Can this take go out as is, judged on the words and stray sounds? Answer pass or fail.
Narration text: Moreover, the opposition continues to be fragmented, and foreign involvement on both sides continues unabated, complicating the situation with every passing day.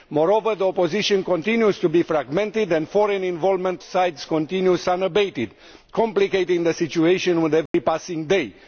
fail